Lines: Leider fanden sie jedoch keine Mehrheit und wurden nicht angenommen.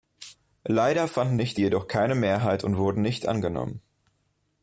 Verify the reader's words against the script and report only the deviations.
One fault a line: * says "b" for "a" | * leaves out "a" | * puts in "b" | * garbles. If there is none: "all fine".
* says "nicht" for "sie"